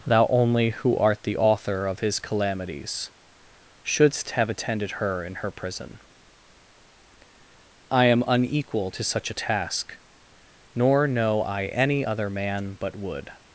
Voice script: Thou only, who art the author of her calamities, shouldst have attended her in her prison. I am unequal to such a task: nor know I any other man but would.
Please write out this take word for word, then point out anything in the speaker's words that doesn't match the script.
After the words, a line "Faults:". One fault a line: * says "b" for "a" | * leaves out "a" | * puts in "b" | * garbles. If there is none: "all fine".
Thou only, who art the author of his calamities, shouldst have attended her in her prison. I am unequal to such a task: nor know I any other man but would.
Faults:
* says "his" for "her"